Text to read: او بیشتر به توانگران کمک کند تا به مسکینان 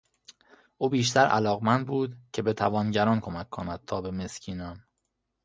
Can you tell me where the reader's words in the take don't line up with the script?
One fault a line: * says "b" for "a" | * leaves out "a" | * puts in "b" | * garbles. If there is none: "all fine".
* puts in "علاقمند بود که"